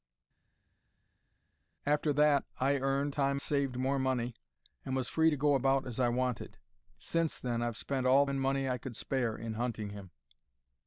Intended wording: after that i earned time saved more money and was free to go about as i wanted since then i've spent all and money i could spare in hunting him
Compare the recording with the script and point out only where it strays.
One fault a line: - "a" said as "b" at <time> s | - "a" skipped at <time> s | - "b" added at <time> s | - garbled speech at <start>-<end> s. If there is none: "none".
none